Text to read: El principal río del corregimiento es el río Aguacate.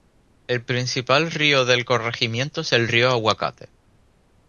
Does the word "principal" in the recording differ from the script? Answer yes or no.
no